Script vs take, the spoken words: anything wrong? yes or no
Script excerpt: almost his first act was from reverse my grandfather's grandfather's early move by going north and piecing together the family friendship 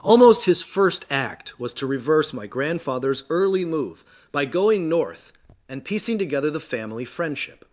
yes